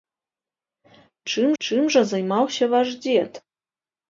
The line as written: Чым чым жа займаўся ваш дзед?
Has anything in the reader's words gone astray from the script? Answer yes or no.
no